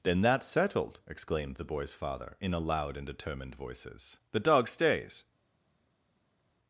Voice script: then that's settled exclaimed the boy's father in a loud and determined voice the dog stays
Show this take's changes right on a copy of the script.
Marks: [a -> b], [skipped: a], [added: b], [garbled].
then that's settled exclaimed the boy's father in a loud and determined [voice -> voices] the dog stays